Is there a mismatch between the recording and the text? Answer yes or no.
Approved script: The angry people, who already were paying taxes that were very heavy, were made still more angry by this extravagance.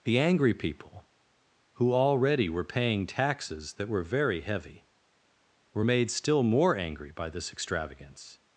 no